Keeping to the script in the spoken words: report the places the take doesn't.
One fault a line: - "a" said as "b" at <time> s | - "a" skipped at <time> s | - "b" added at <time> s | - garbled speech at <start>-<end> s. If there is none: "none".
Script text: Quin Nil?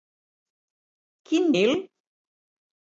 none